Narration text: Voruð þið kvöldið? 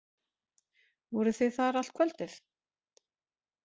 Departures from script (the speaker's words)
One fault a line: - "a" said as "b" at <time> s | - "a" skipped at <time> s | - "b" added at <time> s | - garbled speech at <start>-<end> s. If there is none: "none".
- "þar allt" added at 1.6 s